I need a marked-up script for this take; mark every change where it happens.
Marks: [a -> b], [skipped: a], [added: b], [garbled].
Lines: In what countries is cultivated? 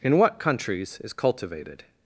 In what countries is cultivated?